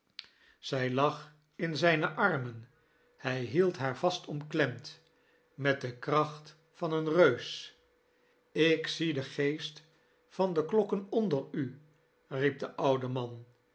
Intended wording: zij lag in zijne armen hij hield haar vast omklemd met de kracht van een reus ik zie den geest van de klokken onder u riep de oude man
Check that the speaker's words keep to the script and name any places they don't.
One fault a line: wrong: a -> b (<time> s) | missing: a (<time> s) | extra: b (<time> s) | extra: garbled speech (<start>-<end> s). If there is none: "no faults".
no faults